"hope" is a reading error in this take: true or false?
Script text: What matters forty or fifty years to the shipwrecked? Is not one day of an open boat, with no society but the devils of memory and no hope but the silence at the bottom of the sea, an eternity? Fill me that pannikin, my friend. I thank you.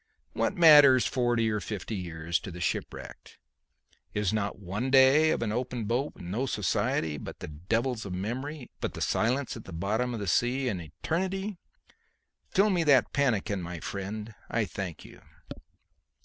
true